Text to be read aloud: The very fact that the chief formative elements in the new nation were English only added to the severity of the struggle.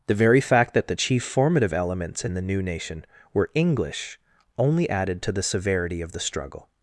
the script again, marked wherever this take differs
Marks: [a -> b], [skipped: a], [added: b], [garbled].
The very fact that the chief formative elements in the new nation were English only added to the severity of the struggle.